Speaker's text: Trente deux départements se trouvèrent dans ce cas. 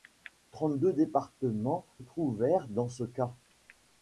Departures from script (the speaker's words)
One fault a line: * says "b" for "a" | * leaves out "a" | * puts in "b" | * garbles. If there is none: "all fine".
* leaves out "se"